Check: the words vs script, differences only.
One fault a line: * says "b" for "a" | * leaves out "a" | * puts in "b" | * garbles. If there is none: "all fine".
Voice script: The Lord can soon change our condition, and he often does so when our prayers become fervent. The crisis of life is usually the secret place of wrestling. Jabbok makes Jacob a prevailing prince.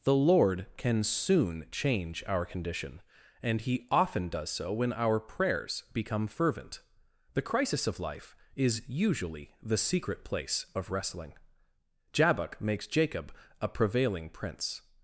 all fine